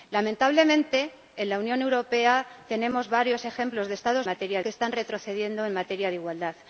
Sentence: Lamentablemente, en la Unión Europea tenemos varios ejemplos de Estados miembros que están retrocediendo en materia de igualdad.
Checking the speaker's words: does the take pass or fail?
fail